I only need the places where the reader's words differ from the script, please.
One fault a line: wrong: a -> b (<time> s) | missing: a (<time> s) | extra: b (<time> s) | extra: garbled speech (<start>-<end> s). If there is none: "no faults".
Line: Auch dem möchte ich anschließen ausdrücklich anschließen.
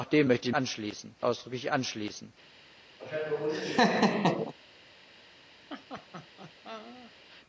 no faults